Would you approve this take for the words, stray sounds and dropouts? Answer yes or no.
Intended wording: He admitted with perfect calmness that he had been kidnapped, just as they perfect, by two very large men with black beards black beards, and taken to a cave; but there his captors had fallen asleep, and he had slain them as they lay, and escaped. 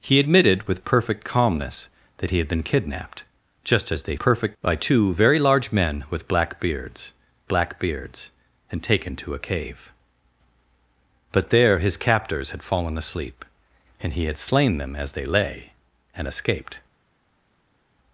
yes